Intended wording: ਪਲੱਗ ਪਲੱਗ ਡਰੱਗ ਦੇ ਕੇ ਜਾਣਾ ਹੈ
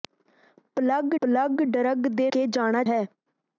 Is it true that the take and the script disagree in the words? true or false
false